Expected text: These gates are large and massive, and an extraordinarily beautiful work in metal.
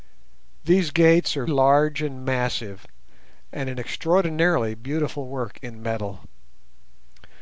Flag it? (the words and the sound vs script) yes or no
no